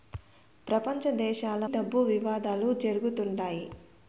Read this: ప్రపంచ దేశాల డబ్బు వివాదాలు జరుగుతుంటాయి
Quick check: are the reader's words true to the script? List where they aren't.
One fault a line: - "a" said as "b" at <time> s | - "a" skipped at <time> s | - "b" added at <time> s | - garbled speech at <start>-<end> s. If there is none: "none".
none